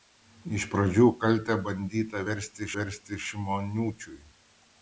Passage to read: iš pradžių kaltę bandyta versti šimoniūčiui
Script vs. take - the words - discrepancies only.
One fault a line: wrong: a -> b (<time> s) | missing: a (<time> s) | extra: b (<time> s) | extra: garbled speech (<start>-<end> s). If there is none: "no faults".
extra: versti (2.8 s)